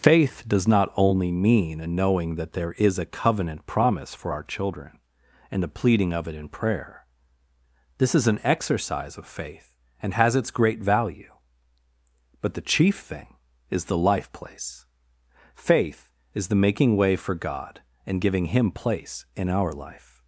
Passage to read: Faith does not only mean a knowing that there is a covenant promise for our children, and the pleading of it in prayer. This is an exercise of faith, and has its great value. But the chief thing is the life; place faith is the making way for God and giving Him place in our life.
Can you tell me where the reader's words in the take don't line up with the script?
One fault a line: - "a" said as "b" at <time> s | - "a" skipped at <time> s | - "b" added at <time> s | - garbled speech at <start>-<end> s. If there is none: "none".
none